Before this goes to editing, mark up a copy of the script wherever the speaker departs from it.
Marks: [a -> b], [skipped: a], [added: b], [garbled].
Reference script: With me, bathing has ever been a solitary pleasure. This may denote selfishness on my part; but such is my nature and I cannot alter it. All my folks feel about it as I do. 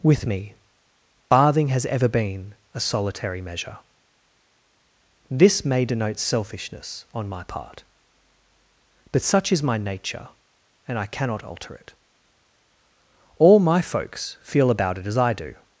With me, bathing has ever been a solitary [pleasure. -> measure] This may denote selfishness on my part; but such is my nature and I cannot alter it. All my folks feel about it as I do.